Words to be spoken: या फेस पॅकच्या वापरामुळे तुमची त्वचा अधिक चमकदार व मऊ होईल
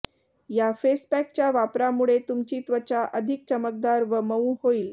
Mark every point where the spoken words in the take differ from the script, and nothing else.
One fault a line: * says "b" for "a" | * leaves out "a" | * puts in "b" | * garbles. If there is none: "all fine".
all fine